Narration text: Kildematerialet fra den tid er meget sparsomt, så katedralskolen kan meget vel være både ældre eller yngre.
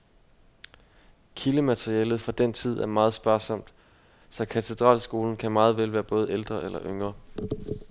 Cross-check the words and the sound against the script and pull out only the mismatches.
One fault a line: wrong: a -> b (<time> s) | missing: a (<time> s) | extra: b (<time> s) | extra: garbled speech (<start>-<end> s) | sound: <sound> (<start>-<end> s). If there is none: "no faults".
no faults